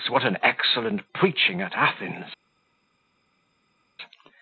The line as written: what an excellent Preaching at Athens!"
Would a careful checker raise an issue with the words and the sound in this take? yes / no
no